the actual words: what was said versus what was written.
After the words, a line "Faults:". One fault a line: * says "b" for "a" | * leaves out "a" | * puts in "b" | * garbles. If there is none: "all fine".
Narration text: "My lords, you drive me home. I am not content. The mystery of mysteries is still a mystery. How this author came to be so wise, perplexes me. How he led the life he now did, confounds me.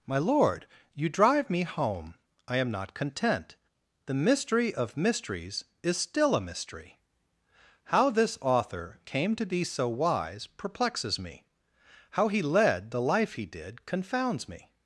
"My lord, you drive me home. I am not content. The mystery of mysteries is still a mystery. How this author came to be so wise, perplexes me. How he led the life he did, confounds me.
Faults:
* says "lord" for "lords"
* leaves out "now"